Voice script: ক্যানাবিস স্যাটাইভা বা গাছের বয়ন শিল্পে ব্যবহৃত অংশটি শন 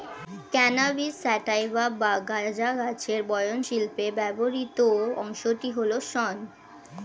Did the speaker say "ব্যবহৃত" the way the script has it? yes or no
yes